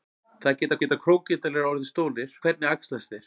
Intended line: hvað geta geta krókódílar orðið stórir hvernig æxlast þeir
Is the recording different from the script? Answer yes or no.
no